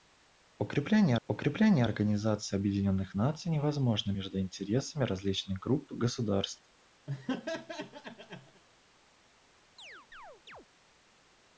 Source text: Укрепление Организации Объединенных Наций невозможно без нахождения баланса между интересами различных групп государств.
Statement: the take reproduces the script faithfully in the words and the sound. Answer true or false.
false